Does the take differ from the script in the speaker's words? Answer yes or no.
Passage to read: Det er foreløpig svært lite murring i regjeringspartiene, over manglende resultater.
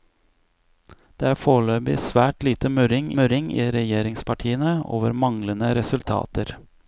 yes